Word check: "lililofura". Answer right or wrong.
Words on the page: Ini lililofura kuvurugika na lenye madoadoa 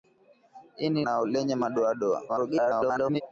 wrong